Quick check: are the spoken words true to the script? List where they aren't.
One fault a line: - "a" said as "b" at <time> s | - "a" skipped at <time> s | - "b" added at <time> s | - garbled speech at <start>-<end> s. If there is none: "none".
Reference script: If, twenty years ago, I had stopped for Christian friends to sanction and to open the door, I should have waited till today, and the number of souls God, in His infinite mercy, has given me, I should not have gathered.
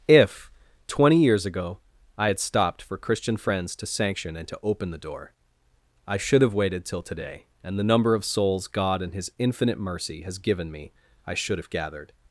- "not" skipped at 11.6 s